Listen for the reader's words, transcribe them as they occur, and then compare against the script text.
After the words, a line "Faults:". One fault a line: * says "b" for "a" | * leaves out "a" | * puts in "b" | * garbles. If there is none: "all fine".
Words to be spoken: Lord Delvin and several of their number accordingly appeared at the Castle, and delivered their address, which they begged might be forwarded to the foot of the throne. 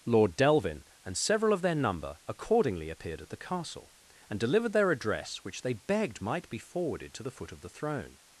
Lord Delvin and several of their number accordingly appeared at the Castle, and delivered their address, which they begged might be forwarded to the foot of the throne.
Faults:
all fine